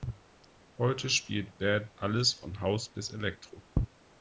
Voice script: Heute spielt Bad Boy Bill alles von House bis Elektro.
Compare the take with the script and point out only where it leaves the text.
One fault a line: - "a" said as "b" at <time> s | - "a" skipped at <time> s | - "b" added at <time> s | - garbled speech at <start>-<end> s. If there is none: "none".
- "Boy Bill" skipped at 1.9 s